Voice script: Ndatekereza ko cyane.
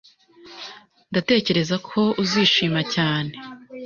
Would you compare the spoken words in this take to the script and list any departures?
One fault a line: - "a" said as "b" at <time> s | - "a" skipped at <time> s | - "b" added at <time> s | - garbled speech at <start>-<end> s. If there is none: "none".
- "uzishima" added at 2.2 s